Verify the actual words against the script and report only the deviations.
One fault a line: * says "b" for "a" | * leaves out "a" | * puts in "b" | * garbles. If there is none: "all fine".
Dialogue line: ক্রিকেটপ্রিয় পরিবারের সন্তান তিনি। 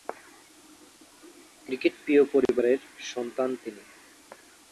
all fine